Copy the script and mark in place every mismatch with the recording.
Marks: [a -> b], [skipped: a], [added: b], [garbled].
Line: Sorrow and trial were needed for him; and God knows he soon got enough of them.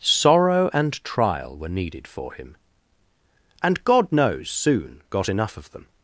Sorrow and trial were needed for him; and God knows [skipped: he] soon got enough of them.